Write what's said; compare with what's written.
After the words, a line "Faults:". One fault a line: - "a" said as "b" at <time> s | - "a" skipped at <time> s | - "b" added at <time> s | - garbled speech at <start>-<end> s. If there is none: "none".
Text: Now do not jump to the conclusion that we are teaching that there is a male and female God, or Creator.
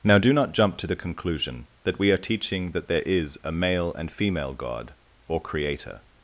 Now do not jump to the conclusion that we are teaching that there is a male and female God, or Creator.
Faults:
none